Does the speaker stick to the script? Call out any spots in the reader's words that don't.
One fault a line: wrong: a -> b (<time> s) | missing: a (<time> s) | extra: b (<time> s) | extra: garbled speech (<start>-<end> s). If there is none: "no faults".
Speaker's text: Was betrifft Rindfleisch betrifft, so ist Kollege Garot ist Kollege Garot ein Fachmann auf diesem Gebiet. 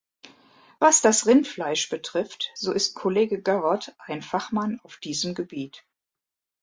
wrong: betrifft -> das (1.0 s)
missing: ist Kollege Garot (3.9 s)